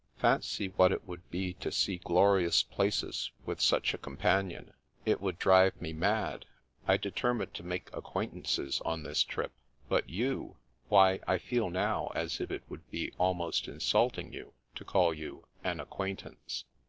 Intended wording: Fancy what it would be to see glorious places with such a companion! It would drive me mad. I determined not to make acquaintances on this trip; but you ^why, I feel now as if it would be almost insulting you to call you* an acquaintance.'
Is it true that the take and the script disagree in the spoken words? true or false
true